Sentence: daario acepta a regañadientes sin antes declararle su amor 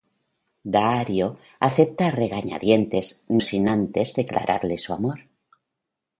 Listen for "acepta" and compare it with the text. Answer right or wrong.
right